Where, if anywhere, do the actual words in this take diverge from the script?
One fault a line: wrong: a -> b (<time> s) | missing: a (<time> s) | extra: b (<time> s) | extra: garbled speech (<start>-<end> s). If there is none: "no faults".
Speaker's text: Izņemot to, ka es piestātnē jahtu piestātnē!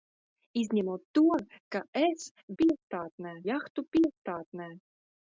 no faults